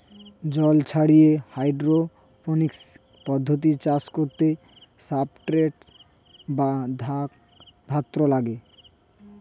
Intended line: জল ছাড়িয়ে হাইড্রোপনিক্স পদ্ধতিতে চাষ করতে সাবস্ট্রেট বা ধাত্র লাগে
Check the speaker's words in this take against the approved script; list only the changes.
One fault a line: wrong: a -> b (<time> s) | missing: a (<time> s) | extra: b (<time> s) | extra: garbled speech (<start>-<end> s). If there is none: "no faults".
no faults